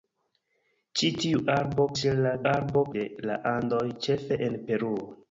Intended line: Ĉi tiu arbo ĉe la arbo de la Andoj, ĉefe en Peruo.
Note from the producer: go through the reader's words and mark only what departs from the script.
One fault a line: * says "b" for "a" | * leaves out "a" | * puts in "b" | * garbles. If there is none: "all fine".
all fine